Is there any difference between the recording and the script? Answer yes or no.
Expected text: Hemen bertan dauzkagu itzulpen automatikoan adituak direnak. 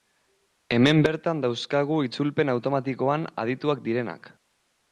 no